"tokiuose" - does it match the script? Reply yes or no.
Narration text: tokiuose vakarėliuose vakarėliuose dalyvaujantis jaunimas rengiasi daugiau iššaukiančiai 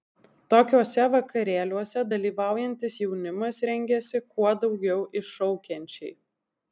yes